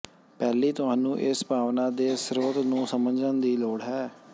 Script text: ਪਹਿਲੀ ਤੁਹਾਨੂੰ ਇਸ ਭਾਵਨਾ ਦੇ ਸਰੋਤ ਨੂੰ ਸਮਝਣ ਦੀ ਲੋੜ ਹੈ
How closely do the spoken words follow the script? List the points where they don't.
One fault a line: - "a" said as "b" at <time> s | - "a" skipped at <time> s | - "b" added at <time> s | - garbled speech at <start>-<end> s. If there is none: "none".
none